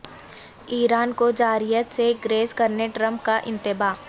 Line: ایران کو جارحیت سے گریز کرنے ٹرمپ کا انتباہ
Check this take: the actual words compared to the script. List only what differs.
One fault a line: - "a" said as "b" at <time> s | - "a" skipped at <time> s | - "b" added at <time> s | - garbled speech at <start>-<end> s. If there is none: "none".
none